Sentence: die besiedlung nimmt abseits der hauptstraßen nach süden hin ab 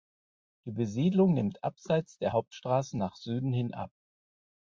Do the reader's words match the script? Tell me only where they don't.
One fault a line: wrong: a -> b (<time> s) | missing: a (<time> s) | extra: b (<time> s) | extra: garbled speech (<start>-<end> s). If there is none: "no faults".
no faults